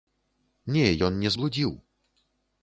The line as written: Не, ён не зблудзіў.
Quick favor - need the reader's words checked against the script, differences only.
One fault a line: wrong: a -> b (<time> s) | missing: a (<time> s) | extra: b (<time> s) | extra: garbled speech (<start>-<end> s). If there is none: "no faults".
no faults